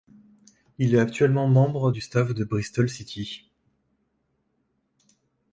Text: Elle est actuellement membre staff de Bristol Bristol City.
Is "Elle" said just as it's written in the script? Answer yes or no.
no